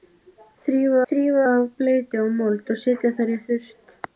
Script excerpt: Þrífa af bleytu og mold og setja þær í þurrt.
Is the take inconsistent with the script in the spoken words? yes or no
yes